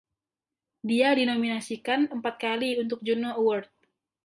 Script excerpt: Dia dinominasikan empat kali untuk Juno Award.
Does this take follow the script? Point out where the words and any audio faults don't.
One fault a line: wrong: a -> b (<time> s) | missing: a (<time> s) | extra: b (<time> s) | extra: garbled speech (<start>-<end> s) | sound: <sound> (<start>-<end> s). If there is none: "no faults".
no faults